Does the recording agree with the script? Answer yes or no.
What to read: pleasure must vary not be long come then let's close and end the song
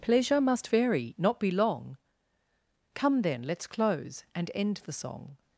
yes